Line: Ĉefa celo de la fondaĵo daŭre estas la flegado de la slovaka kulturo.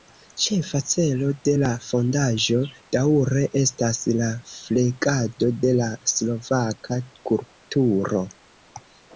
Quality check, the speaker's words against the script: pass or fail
pass